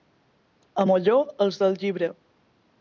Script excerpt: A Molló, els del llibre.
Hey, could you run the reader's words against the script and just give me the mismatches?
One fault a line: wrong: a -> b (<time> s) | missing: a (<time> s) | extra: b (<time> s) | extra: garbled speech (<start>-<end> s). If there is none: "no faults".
no faults